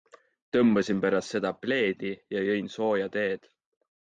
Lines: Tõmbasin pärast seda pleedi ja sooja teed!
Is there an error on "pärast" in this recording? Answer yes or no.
no